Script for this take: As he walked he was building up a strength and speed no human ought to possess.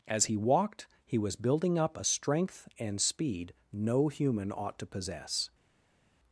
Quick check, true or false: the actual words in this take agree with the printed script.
true